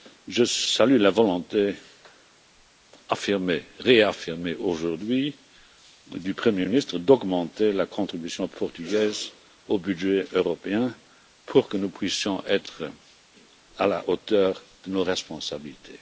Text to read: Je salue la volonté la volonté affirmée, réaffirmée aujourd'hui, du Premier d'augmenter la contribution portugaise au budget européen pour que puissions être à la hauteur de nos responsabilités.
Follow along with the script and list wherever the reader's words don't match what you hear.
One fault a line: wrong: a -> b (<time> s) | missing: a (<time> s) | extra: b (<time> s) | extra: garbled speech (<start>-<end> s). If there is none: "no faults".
missing: la volonté (1.8 s)
extra: ministre (6.7 s)
extra: nous (11.8 s)